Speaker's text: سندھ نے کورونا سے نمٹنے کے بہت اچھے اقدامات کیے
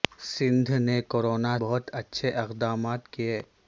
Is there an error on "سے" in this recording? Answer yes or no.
yes